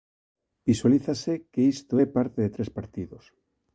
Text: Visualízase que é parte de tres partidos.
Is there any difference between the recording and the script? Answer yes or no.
yes